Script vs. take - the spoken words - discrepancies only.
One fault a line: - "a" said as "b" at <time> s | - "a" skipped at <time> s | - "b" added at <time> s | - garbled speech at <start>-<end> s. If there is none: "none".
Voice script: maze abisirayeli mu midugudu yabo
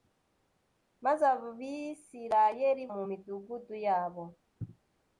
none